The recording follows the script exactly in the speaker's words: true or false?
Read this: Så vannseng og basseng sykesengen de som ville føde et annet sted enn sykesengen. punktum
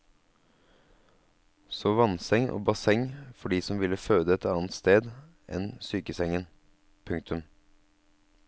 false